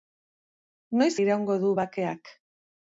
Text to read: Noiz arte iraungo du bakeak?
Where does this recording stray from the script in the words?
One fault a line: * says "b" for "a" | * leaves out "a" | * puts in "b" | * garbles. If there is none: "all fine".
* leaves out "arte"